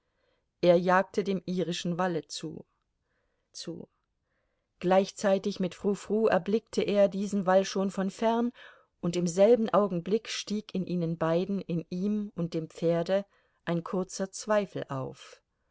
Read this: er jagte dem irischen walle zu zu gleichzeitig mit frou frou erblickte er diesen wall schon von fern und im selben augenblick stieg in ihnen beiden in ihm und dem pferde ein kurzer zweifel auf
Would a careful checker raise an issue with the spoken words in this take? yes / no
no